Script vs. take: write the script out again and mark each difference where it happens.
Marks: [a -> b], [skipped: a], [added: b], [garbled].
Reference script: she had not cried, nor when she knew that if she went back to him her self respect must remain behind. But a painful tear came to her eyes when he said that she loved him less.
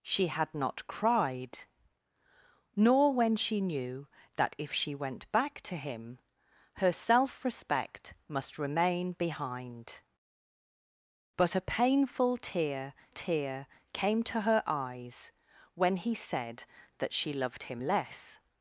she had not cried, nor when she knew that if she went back to him her self respect must remain behind. But a painful tear [added: tear] came to her eyes when he said that she loved him less.